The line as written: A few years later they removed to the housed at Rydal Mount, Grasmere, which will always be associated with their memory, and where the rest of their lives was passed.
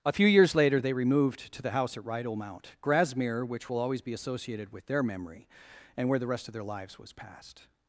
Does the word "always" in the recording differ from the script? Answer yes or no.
no